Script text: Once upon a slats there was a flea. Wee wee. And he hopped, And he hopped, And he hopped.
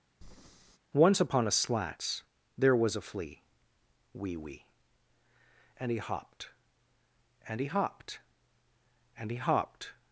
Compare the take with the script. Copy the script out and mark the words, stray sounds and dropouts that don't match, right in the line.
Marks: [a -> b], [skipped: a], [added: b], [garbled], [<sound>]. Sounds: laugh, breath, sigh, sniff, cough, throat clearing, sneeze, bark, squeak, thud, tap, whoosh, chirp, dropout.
[breath] Once upon a slats there was a flea. Wee wee. And he hopped, And he hopped, And he hopped.